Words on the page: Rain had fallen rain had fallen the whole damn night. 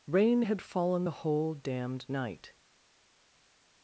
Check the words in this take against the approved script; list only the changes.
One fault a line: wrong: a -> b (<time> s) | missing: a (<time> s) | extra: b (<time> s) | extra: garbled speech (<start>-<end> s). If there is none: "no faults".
missing: rain had fallen (1.1 s)
wrong: damn -> damned (1.5 s)